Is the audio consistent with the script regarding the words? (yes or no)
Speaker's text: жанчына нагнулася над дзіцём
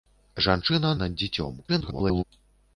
no